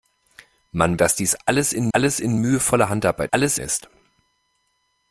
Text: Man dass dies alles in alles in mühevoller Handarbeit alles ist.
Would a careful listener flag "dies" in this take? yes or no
no